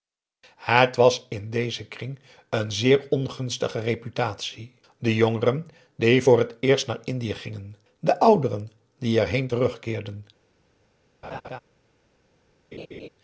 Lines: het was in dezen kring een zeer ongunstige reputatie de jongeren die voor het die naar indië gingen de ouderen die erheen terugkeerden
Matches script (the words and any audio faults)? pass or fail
fail